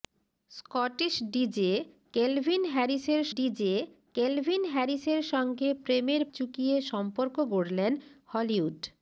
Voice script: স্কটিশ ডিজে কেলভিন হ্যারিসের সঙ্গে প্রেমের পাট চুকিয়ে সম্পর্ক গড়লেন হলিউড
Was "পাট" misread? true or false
true